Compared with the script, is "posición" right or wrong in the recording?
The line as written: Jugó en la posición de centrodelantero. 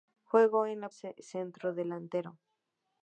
wrong